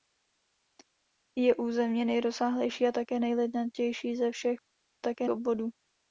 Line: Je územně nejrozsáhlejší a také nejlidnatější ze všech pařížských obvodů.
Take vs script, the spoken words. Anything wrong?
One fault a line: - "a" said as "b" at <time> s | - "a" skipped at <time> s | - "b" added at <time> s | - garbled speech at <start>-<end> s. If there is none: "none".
- "pařížských" said as "také" at 5.0 s